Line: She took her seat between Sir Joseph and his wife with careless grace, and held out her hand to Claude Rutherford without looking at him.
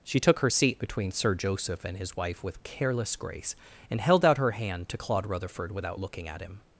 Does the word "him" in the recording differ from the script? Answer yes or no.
no